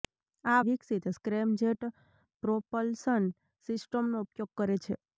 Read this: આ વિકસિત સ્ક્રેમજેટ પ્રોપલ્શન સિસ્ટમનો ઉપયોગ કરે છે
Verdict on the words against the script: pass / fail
pass